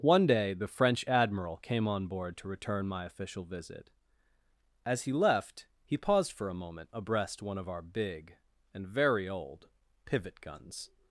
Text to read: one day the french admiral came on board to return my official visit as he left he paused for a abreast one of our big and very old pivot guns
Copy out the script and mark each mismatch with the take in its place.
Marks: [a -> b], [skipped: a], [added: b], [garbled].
one day the french admiral came on board to return my official visit as he left he paused for a [added: moment] abreast one of our big and very old pivot guns